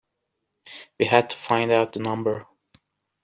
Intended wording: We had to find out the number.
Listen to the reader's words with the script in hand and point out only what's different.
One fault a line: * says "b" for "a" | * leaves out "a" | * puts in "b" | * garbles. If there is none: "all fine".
all fine